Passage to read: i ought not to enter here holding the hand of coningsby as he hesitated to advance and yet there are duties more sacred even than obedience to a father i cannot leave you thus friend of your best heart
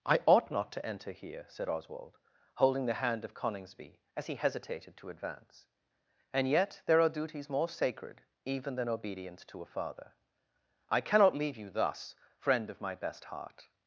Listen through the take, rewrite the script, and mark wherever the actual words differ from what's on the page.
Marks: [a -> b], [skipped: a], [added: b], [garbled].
i ought not to enter here [added: said oswald] holding the hand of coningsby as he hesitated to advance and yet there are duties more sacred even than obedience to a father i cannot leave you thus friend of [your -> my] best heart